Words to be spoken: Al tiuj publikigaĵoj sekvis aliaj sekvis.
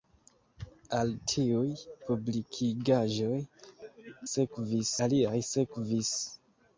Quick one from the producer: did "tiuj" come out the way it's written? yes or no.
yes